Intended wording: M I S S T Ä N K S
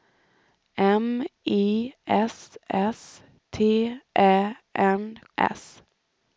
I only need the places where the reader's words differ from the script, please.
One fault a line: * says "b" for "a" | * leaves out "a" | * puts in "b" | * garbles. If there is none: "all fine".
* leaves out "K"